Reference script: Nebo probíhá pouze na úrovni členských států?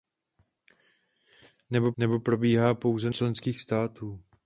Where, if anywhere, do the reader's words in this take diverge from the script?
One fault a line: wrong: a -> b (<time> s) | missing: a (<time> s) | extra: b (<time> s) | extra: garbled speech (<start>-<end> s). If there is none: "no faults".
extra: nebo (2.0 s)
missing: na úrovni (3.1 s)